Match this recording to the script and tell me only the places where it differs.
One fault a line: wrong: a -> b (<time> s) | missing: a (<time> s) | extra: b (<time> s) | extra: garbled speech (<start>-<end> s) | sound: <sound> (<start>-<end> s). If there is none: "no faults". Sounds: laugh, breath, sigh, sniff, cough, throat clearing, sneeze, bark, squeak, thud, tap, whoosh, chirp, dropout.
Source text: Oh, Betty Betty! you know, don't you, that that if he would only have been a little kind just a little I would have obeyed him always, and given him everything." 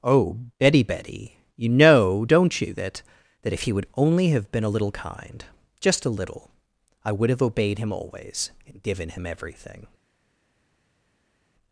no faults